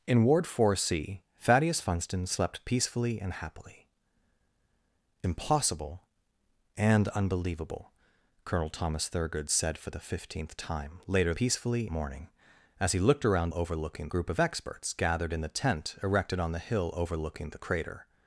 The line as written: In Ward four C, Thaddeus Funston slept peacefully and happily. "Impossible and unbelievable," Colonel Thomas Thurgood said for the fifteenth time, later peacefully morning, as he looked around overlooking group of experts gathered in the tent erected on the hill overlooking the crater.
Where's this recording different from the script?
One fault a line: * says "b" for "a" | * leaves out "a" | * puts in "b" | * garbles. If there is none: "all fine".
all fine